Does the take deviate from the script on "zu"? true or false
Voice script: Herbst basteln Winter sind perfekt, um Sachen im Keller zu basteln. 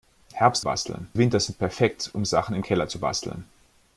false